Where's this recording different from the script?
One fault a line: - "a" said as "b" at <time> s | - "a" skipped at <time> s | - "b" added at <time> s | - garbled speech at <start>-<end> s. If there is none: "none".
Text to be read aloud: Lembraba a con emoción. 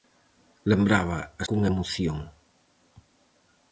none